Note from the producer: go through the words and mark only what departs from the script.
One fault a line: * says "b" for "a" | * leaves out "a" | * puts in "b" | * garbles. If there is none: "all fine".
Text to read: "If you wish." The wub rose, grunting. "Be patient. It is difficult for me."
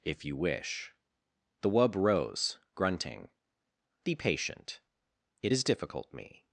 * leaves out "for"